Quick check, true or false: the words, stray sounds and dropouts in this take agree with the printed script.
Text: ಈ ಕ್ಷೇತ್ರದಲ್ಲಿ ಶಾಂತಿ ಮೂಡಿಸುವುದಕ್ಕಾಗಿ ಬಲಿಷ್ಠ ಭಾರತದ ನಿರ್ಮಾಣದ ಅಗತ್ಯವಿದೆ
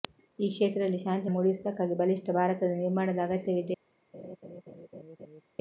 false